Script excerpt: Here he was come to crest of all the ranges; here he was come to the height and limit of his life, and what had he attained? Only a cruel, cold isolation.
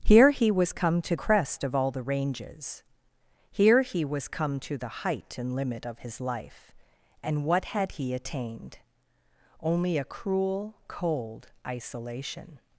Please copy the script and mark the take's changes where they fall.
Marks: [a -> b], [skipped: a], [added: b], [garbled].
Here he was come to crest of all the ranges; here he was come to the height and limit of his life, and what had he attained? Only a cruel, cold isolation.